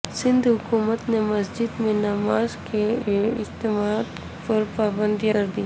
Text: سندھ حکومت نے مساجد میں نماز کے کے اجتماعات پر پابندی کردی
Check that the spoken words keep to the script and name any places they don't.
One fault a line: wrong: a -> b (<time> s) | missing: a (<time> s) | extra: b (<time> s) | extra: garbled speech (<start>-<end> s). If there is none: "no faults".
no faults